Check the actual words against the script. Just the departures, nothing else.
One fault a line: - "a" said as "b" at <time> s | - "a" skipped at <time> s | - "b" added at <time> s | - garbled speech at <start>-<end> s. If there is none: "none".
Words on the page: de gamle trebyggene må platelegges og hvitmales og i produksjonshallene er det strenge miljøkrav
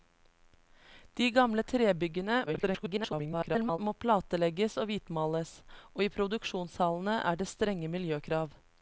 - garbled speech at 2.5-3.8 s